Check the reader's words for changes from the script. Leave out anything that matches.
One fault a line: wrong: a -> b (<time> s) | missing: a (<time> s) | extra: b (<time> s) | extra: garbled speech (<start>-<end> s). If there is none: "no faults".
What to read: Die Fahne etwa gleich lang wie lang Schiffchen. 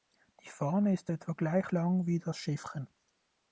extra: ist (0.9 s)
wrong: lang -> das (2.2 s)